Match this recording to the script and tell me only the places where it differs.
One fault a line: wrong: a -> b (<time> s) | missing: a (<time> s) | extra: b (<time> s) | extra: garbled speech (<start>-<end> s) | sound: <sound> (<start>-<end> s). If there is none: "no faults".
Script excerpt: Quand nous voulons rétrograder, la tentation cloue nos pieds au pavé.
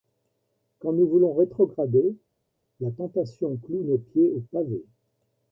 no faults